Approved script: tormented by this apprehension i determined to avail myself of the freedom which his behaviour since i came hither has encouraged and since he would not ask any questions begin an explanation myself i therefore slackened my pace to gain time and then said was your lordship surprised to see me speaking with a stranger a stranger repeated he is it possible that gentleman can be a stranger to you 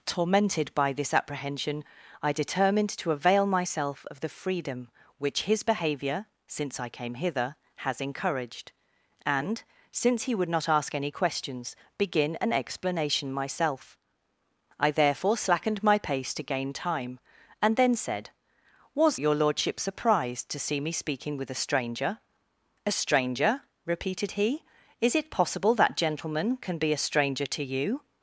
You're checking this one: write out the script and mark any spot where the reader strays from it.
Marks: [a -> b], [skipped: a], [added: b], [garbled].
tormented by this apprehension i determined to avail myself of the freedom which his behaviour since i came hither has encouraged and since he would not ask any questions begin an explanation myself i therefore slackened my pace to gain time and then said was your lordship surprised to see me speaking with a stranger a stranger repeated he is it possible that gentleman can be a stranger to you